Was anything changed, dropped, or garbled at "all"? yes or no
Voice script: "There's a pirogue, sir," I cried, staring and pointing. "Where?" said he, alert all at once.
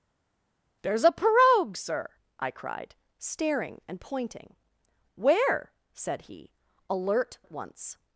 yes